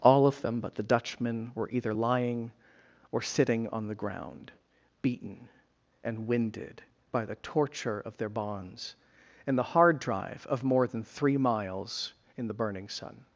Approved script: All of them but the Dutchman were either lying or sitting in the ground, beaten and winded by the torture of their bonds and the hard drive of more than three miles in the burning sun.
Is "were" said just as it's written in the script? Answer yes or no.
yes